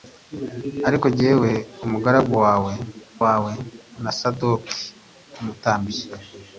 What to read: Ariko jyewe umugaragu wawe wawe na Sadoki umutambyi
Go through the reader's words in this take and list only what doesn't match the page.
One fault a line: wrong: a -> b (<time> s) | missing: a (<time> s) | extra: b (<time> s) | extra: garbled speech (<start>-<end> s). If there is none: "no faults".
no faults